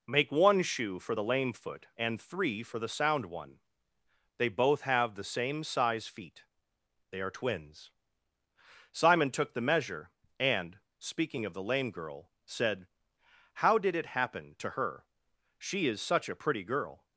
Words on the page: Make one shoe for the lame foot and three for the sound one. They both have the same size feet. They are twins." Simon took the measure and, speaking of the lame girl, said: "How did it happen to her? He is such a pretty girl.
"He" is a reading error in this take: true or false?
true